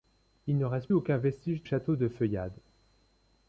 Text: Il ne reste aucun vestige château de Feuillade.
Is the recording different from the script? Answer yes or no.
no